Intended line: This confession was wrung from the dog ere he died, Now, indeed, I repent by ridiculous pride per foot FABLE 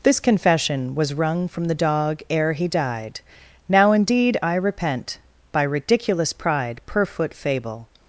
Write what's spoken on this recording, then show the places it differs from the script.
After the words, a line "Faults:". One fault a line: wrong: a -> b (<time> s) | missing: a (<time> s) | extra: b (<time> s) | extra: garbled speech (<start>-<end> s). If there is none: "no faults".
This confession was wrung from the dog ere he died, Now, indeed, I repent by ridiculous pride per foot FABLE
Faults:
no faults